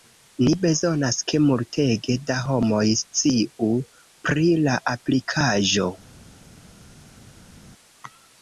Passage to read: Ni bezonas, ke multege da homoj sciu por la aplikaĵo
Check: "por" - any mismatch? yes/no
yes